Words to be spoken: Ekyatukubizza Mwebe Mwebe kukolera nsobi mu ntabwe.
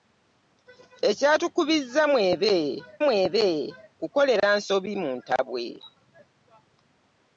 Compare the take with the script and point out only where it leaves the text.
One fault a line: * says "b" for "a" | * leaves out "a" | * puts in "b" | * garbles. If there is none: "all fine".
all fine